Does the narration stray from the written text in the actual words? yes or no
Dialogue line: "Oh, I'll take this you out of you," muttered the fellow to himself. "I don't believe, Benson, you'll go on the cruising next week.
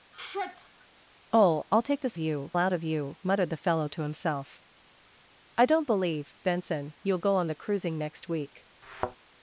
no